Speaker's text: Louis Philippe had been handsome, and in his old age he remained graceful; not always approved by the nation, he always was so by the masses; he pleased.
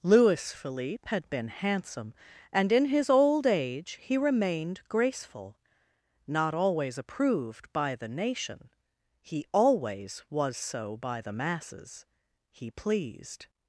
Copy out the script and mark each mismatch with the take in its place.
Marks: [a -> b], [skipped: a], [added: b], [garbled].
Louis Philippe had been handsome, and in his old age he remained graceful; not always approved by the nation, he always was so by the masses; he pleased.